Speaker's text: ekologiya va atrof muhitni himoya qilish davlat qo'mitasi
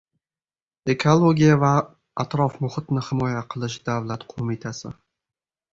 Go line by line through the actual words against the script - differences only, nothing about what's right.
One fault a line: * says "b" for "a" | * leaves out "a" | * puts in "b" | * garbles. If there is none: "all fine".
all fine